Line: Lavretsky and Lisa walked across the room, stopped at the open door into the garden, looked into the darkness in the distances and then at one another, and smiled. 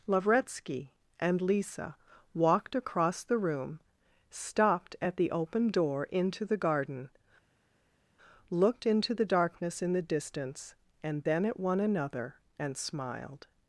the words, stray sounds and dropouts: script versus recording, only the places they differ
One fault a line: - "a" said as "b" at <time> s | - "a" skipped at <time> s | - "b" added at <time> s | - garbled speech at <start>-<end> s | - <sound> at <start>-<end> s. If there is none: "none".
- "distances" said as "distance" at 10.0 s